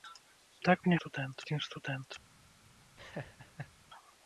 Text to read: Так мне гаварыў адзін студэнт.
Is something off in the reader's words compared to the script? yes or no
yes